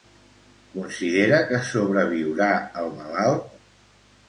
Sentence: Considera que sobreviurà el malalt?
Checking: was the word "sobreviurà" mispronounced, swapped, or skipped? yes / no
no